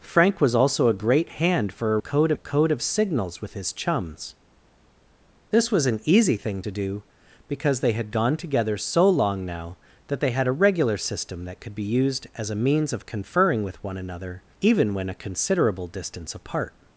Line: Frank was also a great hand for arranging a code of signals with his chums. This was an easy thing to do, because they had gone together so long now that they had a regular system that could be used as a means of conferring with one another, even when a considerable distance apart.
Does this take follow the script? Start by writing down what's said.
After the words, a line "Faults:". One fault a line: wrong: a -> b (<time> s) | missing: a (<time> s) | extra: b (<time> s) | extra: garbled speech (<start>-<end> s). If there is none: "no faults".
Frank was also a great hand for code a code of signals with his chums. This was an easy thing to do, because they had gone together so long now that they had a regular system that could be used as a means of conferring with one another, even when a considerable distance apart.
Faults:
wrong: arranging -> code (2.0 s)